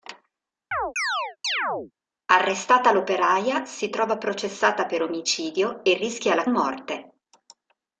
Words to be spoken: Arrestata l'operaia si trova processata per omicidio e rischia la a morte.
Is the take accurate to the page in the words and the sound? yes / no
no